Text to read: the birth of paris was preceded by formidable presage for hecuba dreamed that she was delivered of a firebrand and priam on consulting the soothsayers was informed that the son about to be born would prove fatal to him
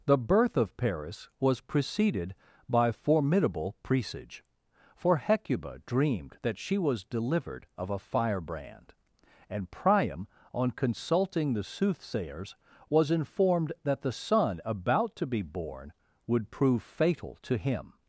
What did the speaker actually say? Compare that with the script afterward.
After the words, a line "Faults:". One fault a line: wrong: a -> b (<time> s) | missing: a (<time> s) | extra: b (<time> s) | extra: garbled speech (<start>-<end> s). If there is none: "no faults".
the birth of paris was preceded by formidable presage for hecuba dreamed that she was delivered of a firebrand and priam on consulting the soothsayers was informed that the son about to be born would prove fatal to him
Faults:
no faults